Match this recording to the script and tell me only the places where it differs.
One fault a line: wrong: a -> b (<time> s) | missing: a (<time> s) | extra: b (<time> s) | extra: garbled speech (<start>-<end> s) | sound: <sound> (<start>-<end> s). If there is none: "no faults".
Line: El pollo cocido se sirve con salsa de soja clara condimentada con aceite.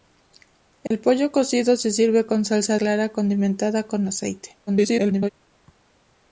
sound: dropout (0.9-0.9 s)
missing: de soja (2.8 s)
extra: garbled speech (4.7-5.3 s)